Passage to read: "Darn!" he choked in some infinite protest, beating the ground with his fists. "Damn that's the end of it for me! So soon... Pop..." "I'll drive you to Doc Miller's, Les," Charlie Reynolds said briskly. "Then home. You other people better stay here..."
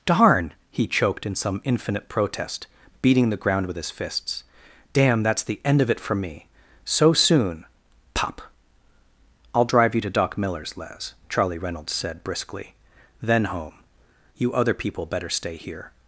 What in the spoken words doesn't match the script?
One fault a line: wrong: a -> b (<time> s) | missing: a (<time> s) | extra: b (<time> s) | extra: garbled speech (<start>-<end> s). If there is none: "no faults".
no faults